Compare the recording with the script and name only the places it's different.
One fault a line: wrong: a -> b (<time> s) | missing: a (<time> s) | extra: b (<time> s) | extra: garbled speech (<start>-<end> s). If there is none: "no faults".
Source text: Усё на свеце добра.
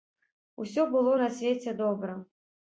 extra: было (0.9 s)